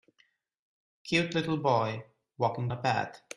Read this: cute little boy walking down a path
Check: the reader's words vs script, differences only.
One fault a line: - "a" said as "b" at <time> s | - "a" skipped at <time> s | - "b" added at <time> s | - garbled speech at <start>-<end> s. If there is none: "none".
- "down" skipped at 2.7 s